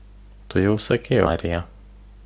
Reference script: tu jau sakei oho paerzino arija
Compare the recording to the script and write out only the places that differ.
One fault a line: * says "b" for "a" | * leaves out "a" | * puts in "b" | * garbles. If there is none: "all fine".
* leaves out "oho paerzino"